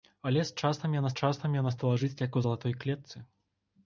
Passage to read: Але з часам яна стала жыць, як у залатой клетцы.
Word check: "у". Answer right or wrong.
right